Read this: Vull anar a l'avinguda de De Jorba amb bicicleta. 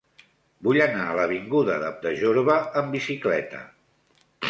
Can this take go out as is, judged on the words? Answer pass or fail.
pass